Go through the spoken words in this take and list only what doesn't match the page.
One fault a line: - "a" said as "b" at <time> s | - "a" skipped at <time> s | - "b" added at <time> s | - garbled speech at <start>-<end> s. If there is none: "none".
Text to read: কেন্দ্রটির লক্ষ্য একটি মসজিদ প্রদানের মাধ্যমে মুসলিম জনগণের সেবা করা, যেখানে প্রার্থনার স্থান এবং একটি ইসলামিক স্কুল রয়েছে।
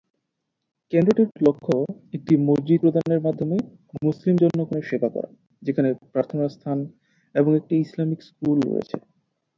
none